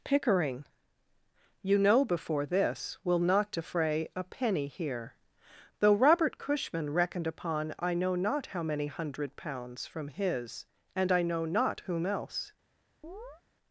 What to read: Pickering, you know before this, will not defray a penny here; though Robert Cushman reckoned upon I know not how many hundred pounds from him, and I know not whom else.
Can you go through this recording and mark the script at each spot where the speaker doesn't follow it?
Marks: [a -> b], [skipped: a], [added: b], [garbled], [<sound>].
Pickering, you know before this, will not defray a penny here; though Robert Cushman reckoned upon I know not how many hundred pounds from [him, -> his] and I know not whom else. [chirp]